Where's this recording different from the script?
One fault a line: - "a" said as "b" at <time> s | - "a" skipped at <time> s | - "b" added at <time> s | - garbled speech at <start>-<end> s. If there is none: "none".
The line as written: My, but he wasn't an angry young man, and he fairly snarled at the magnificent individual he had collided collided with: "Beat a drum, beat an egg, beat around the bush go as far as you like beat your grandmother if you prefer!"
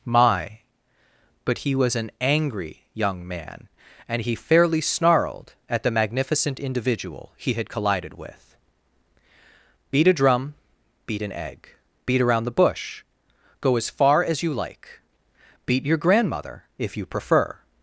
- "wasn't" said as "was" at 1.7 s
- "collided" skipped at 8.1 s